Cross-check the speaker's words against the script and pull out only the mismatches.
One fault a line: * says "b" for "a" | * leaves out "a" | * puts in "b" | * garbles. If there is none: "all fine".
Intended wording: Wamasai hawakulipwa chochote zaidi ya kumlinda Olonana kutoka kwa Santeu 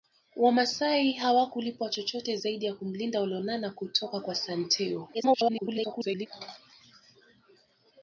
* garbles